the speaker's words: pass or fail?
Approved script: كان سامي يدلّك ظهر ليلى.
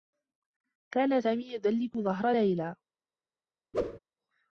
pass